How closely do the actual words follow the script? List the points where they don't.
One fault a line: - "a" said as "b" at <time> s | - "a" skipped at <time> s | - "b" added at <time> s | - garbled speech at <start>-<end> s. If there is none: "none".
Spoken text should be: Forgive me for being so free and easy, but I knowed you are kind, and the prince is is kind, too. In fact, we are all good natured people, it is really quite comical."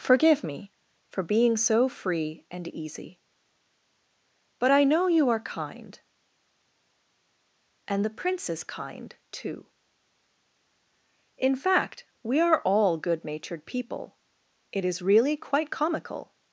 - "knowed" said as "know" at 4.8 s
- "is" skipped at 8.6 s